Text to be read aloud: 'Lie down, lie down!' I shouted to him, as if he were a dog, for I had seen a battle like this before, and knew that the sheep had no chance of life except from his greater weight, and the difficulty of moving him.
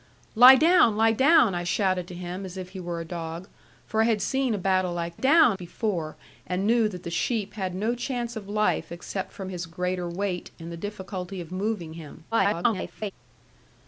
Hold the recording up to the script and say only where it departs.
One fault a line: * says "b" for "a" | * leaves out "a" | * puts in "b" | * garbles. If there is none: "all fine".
* says "down" for "this"
* garbles